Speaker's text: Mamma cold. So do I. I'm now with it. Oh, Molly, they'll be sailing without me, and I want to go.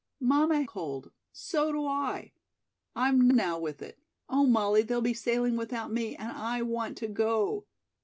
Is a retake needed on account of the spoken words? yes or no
no